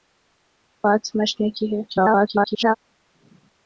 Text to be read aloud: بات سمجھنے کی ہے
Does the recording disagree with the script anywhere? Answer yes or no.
yes